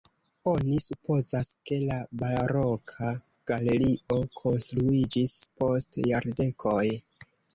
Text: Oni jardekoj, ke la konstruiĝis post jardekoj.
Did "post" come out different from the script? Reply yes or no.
no